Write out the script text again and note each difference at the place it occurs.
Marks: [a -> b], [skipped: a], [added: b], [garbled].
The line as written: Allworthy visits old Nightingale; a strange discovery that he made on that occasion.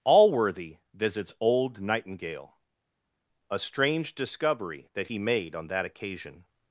Allworthy visits old Nightingale; a strange discovery that he made on that occasion.